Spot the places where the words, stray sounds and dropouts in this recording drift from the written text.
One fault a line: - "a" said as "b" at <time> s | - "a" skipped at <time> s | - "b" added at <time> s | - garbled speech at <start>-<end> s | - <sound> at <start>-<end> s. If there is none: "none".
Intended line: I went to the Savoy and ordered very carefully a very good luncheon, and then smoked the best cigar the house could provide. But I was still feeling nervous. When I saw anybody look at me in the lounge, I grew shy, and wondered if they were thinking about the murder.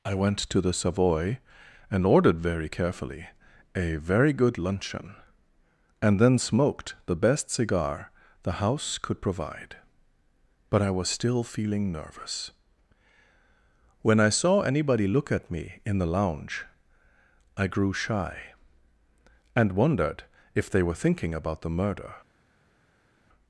none